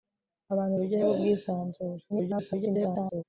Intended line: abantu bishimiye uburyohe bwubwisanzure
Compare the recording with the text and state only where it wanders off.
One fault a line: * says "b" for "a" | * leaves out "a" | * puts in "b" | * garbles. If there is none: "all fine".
* leaves out "bishimiye"
* garbles